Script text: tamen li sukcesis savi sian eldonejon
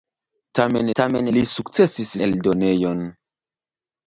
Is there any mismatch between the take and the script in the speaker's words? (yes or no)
yes